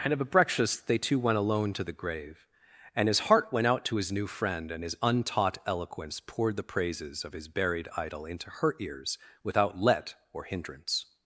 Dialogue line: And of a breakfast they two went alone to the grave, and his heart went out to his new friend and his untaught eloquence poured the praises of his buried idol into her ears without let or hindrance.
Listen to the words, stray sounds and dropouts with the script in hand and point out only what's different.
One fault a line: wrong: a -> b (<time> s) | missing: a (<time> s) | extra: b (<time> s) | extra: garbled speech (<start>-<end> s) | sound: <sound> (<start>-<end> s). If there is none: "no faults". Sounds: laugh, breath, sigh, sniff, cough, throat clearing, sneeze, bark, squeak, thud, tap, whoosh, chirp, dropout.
no faults